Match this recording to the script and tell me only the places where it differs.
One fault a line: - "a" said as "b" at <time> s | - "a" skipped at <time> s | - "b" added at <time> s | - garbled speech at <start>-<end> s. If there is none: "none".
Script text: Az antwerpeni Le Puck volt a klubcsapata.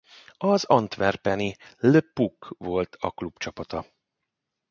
none